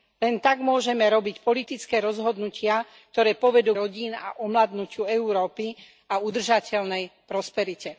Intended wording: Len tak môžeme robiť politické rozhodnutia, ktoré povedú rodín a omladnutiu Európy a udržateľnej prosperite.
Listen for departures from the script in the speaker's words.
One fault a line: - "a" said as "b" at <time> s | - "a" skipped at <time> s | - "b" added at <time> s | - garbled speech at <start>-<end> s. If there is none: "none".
none